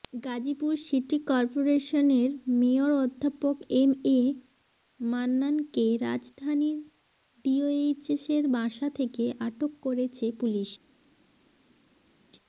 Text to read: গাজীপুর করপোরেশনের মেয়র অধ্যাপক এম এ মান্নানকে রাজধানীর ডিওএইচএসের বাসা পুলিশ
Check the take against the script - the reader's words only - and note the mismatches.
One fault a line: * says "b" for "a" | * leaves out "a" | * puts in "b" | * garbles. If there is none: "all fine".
* puts in "সিটি"
* puts in "থেকে আটক করেছে"